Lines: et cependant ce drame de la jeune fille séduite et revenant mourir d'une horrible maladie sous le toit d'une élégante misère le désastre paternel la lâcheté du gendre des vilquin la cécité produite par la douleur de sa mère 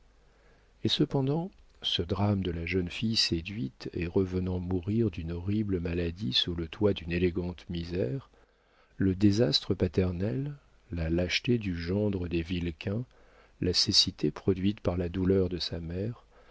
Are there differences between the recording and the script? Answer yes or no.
no